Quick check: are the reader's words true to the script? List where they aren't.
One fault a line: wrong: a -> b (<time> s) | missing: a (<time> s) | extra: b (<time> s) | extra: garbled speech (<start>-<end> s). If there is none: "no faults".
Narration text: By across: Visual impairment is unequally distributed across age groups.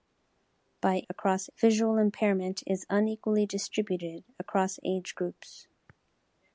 no faults